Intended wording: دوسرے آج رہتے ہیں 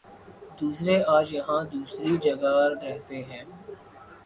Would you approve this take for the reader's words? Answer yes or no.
no